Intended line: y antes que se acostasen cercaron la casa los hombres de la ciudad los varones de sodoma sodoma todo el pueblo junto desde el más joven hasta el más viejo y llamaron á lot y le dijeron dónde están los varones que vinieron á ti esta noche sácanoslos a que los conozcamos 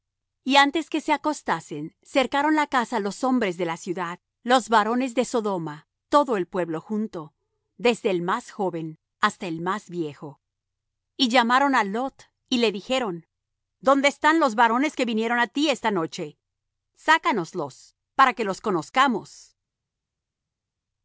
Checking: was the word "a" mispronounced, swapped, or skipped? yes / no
yes